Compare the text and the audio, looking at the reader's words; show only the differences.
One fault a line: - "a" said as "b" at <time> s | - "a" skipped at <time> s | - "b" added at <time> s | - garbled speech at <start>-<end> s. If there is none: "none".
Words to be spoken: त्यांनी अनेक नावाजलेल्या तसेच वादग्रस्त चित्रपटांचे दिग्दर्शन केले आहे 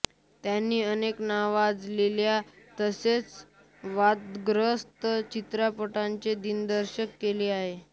none